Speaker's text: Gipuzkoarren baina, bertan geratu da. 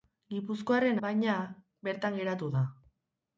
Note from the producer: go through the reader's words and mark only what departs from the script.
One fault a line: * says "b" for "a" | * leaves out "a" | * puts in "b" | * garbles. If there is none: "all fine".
all fine